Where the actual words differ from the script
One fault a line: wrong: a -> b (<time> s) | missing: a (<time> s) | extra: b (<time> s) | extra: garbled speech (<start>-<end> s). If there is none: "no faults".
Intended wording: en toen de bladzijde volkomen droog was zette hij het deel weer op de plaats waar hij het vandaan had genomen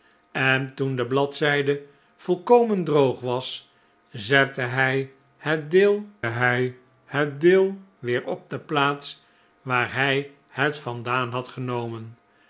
extra: hij het deel (6.2 s)